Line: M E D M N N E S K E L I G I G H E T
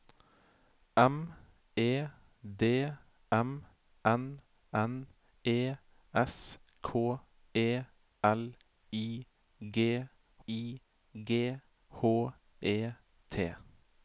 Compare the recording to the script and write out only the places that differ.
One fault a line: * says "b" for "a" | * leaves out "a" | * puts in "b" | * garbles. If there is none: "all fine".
all fine